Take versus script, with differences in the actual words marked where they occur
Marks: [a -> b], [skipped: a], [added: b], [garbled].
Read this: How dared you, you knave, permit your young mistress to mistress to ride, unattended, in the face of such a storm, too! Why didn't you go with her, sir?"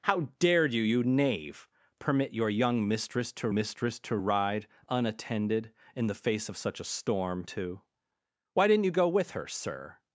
How dared you, you knave, permit your young mistress to mistress to ride, unattended, in the face of such a storm, too! Why didn't you go with her, sir?"